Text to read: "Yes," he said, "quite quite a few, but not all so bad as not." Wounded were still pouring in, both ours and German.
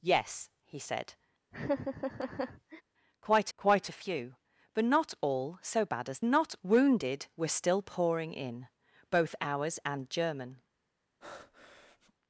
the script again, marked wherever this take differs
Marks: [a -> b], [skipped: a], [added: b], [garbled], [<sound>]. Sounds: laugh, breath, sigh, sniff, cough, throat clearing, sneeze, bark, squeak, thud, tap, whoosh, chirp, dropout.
"Yes," he said, [laugh] "quite quite a few, but not all so bad as not." Wounded were still pouring in, both ours and German. [breath]